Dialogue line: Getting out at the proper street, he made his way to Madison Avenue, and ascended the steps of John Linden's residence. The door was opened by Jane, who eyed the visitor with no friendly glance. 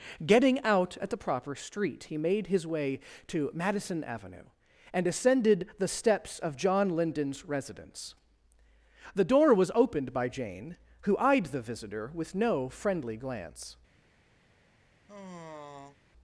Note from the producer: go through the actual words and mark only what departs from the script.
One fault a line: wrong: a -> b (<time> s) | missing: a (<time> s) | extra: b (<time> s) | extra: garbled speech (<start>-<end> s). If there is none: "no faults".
no faults